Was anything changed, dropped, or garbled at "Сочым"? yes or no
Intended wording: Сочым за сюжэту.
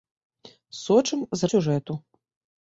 no